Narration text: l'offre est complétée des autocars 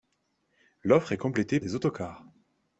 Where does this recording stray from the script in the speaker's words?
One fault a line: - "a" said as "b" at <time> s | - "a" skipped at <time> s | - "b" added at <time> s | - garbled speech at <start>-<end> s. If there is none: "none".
none